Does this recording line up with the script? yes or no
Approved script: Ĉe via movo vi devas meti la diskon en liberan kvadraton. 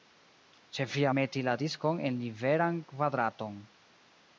no